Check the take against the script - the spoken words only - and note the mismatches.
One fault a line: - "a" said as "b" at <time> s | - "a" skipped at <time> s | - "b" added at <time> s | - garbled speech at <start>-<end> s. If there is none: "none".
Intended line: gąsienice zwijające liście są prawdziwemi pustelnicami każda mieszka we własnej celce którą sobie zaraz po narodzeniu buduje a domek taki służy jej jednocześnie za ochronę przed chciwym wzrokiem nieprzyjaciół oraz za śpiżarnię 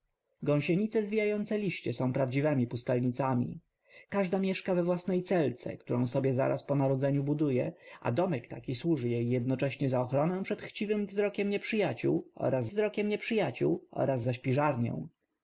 - "wzrokiem nieprzyjaciół oraz" added at 12.7 s